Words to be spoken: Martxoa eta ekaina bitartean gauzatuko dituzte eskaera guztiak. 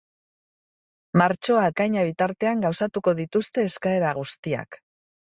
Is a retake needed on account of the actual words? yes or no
yes